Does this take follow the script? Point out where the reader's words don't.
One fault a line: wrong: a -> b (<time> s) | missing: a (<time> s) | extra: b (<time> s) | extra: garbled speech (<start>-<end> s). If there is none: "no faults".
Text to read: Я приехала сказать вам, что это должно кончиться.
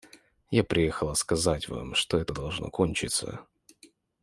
no faults